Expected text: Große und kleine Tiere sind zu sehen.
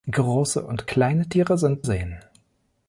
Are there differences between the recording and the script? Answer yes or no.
yes